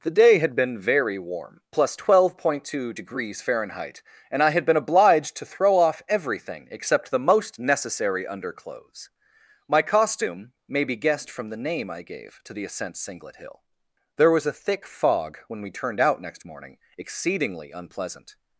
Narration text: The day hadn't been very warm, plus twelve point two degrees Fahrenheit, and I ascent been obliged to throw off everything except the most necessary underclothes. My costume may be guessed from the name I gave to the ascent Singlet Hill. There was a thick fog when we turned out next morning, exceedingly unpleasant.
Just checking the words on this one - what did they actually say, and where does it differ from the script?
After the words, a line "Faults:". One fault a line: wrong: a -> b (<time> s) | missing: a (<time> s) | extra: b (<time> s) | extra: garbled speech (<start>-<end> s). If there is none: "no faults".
The day had been very warm, plus twelve point two degrees Fahrenheit, and I had been obliged to throw off everything except the most necessary underclothes. My costume may be guessed from the name I gave to the ascent Singlet Hill. There was a thick fog when we turned out next morning, exceedingly unpleasant.
Faults:
wrong: hadn't -> had (0.4 s)
wrong: ascent -> had (4.5 s)